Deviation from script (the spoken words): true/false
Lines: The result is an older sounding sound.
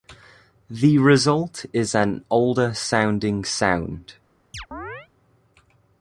false